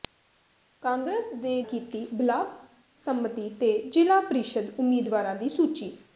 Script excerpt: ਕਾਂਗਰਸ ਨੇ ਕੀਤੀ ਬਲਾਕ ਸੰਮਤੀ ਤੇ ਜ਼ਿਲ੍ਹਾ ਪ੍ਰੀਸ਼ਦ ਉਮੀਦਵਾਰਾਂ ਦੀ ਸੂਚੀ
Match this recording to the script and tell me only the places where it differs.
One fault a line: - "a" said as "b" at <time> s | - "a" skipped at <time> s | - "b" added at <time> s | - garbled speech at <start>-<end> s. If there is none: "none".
none